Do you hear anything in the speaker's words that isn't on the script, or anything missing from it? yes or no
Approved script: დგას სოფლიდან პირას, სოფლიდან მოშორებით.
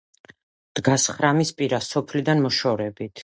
yes